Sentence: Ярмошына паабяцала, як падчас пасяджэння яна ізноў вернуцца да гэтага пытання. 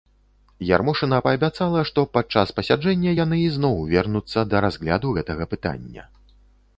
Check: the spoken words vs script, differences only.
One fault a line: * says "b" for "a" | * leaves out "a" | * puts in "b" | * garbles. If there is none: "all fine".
* says "што" for "як"
* says "яны" for "яна"
* puts in "разгляду"